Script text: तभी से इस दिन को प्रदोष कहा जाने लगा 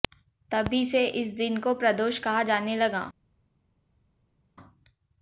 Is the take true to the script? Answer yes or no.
yes